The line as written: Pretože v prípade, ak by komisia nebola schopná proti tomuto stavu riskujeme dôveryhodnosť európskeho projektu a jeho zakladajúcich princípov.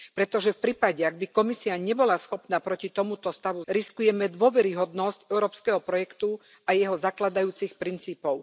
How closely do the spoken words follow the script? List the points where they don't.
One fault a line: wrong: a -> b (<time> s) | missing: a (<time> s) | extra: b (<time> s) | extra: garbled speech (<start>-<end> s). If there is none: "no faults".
no faults